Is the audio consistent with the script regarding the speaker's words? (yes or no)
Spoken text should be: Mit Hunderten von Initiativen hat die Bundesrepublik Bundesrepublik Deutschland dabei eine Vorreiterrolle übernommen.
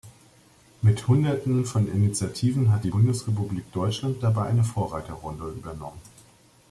no